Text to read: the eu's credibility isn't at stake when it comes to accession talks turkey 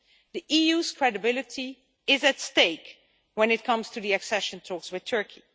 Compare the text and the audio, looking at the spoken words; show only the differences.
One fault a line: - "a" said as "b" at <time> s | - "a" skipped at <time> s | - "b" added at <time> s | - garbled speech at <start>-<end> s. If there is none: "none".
- "isn't" said as "is" at 2.1 s
- "the" added at 4.0 s
- "with" added at 4.9 s